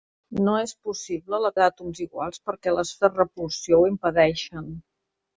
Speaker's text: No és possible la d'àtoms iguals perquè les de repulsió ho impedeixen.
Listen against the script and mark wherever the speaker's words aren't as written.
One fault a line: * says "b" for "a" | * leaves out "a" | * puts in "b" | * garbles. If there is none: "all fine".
all fine